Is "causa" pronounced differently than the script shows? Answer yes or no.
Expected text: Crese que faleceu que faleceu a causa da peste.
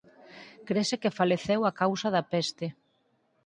no